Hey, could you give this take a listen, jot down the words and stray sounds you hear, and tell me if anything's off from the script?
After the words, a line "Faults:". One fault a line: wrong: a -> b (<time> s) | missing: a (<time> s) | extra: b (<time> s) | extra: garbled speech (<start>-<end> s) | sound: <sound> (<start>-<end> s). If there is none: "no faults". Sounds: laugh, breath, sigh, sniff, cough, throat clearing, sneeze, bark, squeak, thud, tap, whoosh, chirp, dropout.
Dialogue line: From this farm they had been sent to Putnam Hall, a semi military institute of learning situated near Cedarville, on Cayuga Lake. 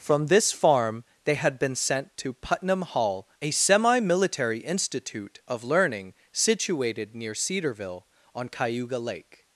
From this farm they had been sent to Putnam Hall, a semi military institute of learning situated near Cedarville, on Cayuga Lake.
Faults:
no faults